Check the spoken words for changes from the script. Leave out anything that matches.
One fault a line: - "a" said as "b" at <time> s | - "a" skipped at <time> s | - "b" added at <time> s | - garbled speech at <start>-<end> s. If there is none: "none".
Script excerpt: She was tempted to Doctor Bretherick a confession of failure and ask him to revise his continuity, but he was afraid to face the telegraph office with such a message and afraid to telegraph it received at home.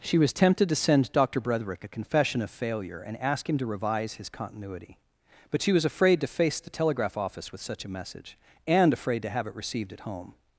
- "send" added at 0.8 s
- "he" said as "she" at 5.6 s
- "telegraph" said as "have" at 9.3 s